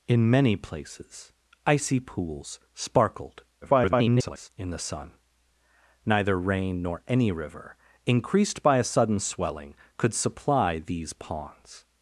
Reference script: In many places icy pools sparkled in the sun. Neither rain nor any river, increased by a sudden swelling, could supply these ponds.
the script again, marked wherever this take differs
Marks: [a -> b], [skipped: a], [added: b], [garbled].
In many places icy pools sparkled [garbled] in the sun. Neither rain nor any river, increased by a sudden swelling, could supply these ponds.